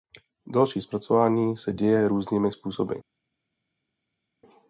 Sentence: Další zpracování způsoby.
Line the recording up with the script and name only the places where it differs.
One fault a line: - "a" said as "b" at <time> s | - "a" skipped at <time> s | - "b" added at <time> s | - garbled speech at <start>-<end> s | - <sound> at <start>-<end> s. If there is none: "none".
- "se děje různými" added at 1.6 s